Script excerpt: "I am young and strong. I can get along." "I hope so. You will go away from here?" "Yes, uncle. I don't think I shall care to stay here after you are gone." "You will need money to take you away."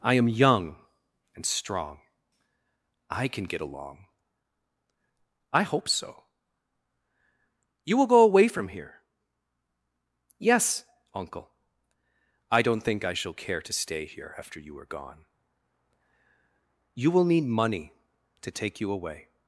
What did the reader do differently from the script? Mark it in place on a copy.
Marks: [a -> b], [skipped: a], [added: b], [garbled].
"I am young and strong. I can get along." "I hope so. You will go away from here?" "Yes, uncle. I don't think I shall care to stay here after you are gone." "You will need money to take you away."